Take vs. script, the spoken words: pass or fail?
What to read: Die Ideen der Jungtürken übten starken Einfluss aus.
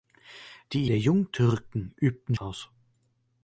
fail